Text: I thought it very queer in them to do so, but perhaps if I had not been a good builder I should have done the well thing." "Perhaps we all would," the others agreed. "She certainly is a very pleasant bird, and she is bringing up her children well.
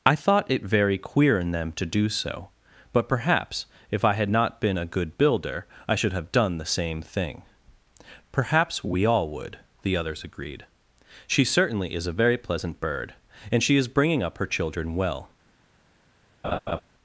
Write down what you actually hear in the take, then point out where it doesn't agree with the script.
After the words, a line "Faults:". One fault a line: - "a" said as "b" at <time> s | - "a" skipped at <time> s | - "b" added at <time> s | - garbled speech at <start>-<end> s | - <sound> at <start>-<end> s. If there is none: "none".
I thought it very queer in them to do so, but perhaps if I had not been a good builder I should have done the same thing." "Perhaps we all would," the others agreed. "She certainly is a very pleasant bird, and she is bringing up her children well.
Faults:
- "well" said as "same" at 6.6 s
- laugh at 16.4-16.8 s